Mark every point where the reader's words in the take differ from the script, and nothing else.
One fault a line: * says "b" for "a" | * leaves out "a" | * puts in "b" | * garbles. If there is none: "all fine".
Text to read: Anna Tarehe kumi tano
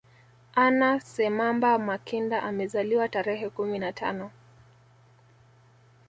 * puts in "Semamba Makinda amezaliwa"
* puts in "na"